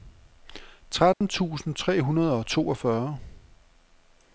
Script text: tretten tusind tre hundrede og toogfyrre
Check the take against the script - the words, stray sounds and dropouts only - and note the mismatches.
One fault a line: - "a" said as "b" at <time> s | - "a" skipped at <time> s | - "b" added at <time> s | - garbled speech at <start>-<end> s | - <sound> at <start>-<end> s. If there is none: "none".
- dropout at 1.1-1.2 s